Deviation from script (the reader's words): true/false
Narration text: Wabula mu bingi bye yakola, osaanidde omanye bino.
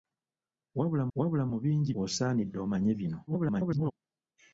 true